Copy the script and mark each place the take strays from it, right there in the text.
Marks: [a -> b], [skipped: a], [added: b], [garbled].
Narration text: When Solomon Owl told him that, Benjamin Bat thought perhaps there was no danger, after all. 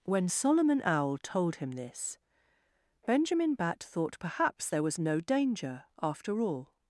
When Solomon Owl told him [that, -> this] Benjamin Bat thought perhaps there was no danger, after all.